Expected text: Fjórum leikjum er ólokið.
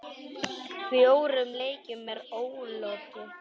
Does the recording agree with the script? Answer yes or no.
yes